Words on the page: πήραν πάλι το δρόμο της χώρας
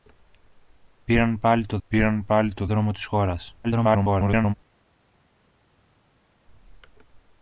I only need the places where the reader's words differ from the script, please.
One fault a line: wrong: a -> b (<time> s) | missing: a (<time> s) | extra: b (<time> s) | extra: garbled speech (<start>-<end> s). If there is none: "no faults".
extra: πήραν πάλι το (1.9 s)
extra: garbled speech (3.6-4.5 s)